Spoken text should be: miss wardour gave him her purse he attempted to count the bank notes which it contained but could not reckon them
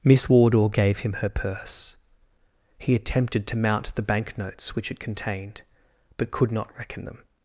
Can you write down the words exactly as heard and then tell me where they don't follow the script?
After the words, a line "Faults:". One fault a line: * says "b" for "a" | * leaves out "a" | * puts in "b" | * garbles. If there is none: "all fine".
miss wardour gave him her purse he attempted to mount the bank notes which it contained but could not reckon them
Faults:
* says "mount" for "count"